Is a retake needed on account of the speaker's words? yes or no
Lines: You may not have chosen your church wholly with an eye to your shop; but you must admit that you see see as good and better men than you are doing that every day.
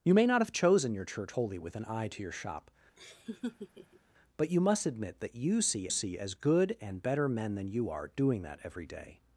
no